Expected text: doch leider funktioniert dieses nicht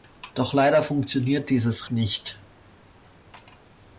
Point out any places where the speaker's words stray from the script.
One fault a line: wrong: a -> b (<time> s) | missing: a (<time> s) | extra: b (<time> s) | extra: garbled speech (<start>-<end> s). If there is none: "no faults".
no faults